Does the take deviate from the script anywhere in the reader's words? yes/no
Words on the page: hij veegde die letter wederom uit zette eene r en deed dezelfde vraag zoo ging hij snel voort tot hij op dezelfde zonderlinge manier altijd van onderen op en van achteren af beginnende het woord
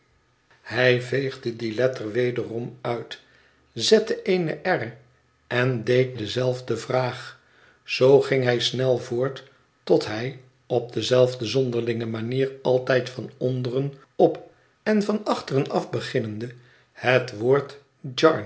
no